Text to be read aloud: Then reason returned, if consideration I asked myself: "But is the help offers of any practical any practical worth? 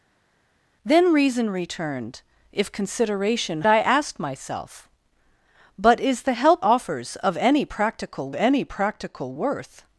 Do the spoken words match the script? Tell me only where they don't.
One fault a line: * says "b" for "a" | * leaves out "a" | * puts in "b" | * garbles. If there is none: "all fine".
all fine